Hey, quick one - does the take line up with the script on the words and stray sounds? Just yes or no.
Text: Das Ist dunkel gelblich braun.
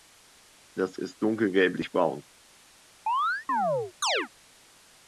no